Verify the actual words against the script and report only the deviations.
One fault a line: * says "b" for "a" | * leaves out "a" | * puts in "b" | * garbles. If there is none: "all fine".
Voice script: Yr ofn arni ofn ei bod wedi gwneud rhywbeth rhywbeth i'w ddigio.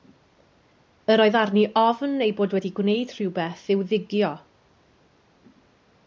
* says "oedd" for "ofn"
* leaves out "rhywbeth"